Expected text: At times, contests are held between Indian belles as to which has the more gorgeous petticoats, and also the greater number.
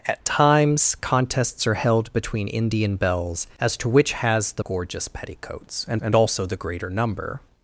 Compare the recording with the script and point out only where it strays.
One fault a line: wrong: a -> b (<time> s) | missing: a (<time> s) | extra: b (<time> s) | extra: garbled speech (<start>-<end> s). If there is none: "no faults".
missing: more (4.6 s)
extra: and (6.0 s)